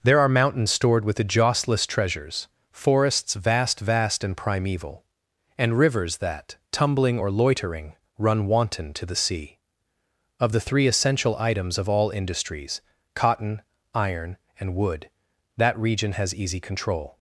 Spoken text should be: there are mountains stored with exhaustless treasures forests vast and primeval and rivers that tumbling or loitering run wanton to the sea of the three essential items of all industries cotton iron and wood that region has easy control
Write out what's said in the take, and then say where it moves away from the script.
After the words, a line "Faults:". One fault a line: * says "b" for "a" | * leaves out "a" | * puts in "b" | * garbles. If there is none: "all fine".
there are mountains stored with exhaustless treasures forests vast vast and primeval and rivers that tumbling or loitering run wanton to the sea of the three essential items of all industries cotton iron and wood that region has easy control
Faults:
* puts in "vast"